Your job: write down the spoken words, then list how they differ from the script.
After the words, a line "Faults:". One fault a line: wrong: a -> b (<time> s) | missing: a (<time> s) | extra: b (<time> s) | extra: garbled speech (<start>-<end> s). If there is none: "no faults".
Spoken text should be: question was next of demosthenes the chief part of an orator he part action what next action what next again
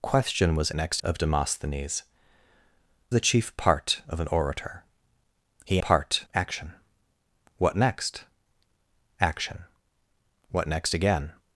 question was next of demosthenes the chief part of an orator he part action what next action what next again
Faults:
no faults